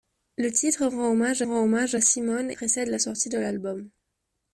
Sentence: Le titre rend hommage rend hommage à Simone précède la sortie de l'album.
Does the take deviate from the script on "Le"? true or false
false